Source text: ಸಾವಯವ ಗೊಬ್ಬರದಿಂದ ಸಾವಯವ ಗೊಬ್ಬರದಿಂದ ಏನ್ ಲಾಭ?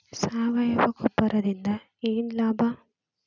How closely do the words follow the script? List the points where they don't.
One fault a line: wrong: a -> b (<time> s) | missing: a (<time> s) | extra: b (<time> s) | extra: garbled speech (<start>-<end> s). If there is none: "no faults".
missing: ಸಾವಯವ ಗೊಬ್ಬರದಿಂದ (1.7 s)